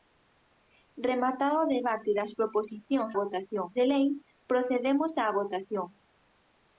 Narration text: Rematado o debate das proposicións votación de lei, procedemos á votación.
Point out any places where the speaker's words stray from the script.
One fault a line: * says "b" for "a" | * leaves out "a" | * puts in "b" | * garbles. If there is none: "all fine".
all fine